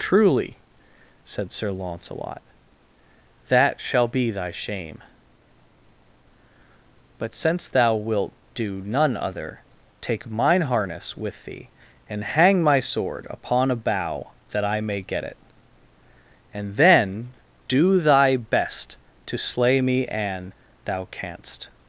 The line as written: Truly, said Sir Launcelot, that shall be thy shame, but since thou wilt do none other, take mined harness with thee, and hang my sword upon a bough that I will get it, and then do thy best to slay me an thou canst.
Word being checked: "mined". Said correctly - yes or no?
no